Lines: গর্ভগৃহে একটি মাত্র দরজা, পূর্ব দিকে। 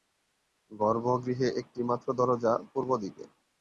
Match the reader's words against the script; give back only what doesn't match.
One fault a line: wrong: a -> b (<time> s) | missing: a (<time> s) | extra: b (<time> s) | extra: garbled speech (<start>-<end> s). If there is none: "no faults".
no faults